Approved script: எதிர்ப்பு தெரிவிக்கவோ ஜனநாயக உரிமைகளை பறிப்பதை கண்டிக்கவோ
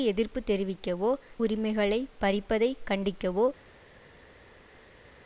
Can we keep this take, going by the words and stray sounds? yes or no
no